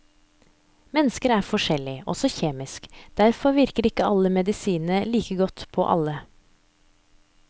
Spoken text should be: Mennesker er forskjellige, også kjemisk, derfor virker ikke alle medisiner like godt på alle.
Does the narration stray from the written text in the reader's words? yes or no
no